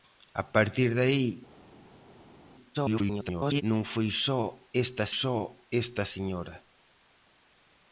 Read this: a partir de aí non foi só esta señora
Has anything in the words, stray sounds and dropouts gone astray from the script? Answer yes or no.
yes